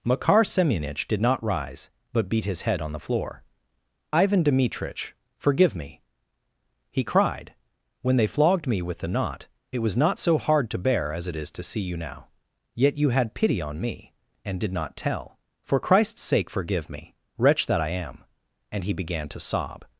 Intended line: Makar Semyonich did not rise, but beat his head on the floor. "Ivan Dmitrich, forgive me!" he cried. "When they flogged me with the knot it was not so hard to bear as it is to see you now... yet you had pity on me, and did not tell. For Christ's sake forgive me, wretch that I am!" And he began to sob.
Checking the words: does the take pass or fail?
pass